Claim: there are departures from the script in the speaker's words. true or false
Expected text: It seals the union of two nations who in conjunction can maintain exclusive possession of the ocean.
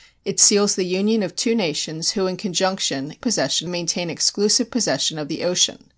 true